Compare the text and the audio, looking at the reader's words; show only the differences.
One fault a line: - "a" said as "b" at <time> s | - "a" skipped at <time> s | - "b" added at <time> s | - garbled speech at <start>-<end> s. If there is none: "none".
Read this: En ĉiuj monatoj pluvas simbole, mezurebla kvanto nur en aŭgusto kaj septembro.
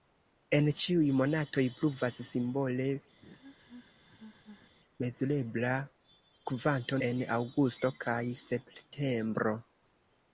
- "nur" skipped at 7.0 s